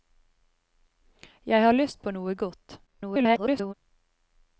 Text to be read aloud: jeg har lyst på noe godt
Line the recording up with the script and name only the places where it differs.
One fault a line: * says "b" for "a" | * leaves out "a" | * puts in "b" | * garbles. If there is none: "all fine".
* garbles